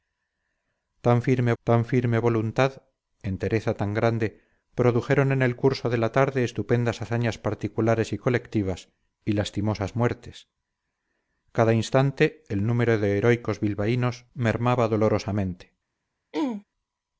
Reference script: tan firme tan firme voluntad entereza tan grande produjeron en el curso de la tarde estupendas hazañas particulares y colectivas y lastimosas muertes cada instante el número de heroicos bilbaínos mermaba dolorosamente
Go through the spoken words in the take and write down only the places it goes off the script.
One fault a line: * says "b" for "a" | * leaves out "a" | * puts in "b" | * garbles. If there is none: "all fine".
all fine